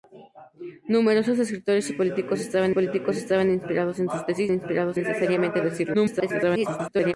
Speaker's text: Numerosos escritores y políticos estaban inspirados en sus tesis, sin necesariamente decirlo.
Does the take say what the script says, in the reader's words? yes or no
no